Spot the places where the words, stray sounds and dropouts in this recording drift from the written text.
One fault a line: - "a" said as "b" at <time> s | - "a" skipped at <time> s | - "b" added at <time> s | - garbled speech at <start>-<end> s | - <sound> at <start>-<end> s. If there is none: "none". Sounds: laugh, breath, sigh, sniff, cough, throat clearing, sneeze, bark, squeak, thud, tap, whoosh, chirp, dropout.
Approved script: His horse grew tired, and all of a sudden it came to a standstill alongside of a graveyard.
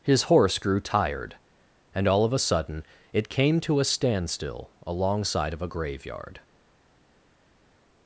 none